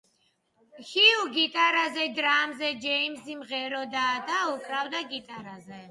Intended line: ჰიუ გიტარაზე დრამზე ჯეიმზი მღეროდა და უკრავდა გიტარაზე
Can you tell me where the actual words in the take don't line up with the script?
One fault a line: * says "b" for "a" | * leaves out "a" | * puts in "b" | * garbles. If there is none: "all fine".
all fine